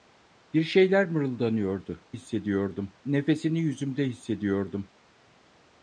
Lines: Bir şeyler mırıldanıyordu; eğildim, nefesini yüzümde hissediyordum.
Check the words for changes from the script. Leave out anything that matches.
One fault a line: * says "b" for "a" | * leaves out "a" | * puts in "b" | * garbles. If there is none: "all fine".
* says "hissediyordum" for "eğildim"